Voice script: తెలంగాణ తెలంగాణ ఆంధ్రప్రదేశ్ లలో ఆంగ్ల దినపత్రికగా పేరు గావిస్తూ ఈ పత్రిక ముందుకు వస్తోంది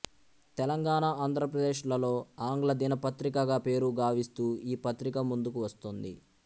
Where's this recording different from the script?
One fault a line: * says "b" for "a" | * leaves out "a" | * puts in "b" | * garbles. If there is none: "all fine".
* leaves out "తెలంగాణ"